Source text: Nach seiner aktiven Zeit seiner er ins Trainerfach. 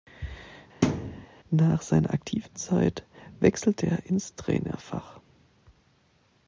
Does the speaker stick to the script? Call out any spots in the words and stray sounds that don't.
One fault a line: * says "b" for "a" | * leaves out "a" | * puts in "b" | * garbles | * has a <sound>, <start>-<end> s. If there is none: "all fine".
* has a thud, 0.8-1.3 s
* says "wechselte" for "seiner"